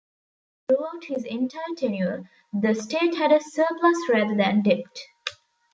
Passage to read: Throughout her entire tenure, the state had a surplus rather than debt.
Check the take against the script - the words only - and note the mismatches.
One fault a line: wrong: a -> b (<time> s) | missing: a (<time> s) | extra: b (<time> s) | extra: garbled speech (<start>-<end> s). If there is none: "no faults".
wrong: her -> his (1.1 s)